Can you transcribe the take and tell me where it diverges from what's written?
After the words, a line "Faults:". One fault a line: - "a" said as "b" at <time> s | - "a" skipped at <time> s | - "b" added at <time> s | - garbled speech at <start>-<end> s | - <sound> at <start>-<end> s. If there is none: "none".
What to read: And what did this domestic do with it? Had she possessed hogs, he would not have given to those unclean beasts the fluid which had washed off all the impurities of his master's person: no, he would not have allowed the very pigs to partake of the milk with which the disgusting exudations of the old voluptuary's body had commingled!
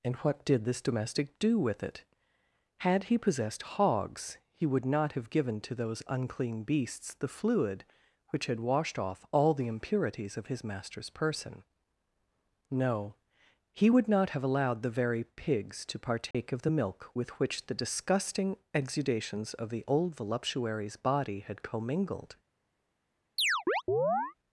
And what did this domestic do with it? Had he possessed hogs, he would not have given to those unclean beasts the fluid which had washed off all the impurities of his master's person: no, he would not have allowed the very pigs to partake of the milk with which the disgusting exudations of the old voluptuary's body had commingled!
Faults:
- "she" said as "he" at 3.0 s
- dropout at 16.3-16.3 s
- chirp at 23.4-24.3 s